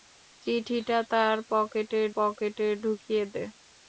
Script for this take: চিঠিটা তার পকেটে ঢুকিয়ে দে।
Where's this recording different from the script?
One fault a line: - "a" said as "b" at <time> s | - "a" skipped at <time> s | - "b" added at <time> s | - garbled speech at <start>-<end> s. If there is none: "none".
- "পকেটে" added at 2.1 s